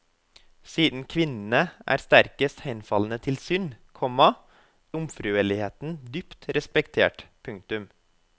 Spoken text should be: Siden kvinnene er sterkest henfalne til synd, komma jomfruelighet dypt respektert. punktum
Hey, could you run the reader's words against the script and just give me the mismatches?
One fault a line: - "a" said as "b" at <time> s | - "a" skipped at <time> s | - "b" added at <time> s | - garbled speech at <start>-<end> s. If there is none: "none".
none